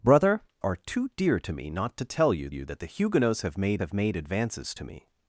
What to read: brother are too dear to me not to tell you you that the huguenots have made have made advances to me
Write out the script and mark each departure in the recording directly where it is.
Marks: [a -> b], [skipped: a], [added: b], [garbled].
brother are too dear to me not to tell you you that the huguenots have made have made advances to me